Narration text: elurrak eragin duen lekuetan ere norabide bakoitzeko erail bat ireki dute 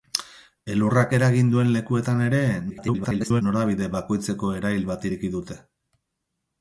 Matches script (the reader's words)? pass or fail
fail